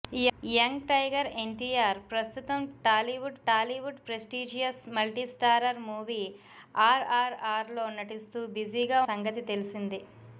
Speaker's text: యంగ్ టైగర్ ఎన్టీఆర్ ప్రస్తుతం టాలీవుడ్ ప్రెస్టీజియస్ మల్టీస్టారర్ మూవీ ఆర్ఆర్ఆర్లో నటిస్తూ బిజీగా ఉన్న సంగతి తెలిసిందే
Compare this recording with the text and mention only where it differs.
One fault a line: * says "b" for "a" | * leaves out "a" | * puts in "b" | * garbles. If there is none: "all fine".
* puts in "టాలీవుడ్"
* leaves out "ఉన్న"